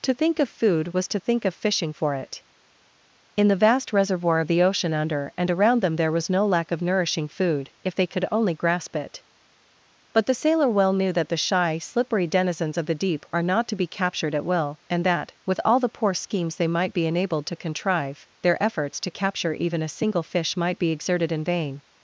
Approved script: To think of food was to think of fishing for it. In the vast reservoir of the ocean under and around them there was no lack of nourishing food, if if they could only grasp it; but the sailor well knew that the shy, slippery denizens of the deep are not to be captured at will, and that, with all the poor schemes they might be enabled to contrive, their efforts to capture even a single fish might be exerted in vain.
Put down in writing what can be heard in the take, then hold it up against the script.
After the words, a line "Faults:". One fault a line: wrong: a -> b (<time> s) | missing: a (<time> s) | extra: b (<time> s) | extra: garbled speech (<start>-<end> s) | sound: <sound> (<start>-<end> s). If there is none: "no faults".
To think of food was to think of fishing for it. In the vast reservoir of the ocean under and around them there was no lack of nourishing food, if they could only grasp it; but the sailor well knew that the shy, slippery denizens of the deep are not to be captured at will, and that, with all the poor schemes they might be enabled to contrive, their efforts to capture even a single fish might be exerted in vain.
Faults:
missing: if (7.9 s)